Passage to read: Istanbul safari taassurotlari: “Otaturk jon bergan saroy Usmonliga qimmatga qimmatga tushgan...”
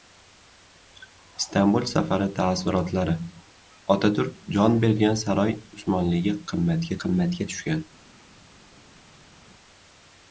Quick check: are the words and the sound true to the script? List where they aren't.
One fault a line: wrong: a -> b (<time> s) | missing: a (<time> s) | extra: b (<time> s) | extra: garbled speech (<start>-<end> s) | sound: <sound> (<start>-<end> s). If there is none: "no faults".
no faults